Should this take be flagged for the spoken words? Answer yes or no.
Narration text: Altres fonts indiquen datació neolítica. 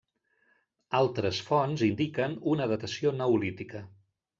yes